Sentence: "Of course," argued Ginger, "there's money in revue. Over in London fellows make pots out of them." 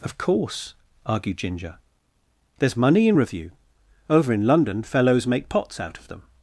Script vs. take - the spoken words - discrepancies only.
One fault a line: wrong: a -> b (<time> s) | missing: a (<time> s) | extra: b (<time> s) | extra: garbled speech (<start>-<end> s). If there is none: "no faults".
no faults